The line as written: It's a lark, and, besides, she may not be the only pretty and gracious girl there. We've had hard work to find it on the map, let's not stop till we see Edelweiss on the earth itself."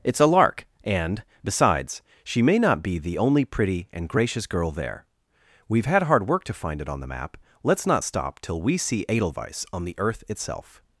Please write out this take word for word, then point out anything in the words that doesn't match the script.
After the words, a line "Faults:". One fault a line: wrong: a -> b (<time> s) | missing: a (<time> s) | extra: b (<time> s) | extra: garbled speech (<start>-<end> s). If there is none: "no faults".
It's a lark, and, besides, she may not be the only pretty and gracious girl there. We've had hard work to find it on the map, let's not stop till we see Edelweiss on the earth itself."
Faults:
no faults